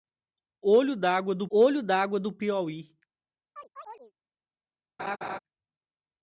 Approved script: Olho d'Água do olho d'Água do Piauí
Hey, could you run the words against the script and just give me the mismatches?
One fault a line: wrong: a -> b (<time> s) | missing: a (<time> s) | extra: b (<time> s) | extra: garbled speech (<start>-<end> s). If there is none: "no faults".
no faults